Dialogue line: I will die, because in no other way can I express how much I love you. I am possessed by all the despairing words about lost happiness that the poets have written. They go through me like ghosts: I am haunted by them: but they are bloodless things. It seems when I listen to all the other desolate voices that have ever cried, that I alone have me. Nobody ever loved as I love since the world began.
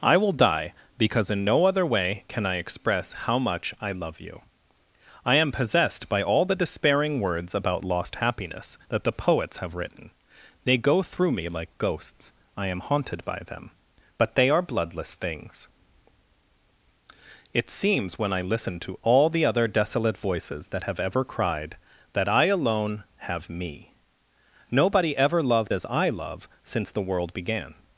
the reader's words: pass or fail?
pass